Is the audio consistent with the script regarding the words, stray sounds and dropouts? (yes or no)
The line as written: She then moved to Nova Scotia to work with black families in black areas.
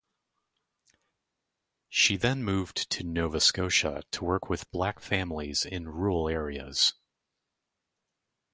no